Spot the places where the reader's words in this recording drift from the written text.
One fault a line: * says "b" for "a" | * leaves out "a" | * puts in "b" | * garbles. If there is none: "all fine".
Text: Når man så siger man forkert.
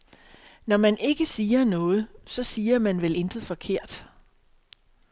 * puts in "ikke siger noget"
* puts in "vel intet"